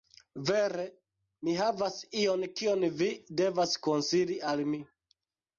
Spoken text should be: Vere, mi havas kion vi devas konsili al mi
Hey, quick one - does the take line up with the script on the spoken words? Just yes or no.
no